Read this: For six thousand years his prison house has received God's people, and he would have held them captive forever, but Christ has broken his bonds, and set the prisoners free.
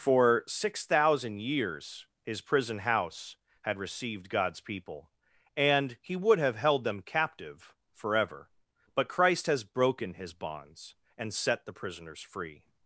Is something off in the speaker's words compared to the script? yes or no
yes